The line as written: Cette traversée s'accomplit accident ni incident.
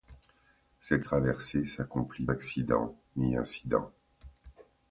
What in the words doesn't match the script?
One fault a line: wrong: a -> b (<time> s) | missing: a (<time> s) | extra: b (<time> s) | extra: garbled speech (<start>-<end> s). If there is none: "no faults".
no faults